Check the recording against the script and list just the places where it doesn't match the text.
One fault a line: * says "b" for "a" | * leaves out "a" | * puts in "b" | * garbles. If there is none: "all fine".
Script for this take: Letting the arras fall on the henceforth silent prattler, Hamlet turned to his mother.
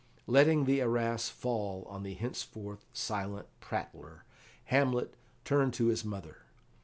all fine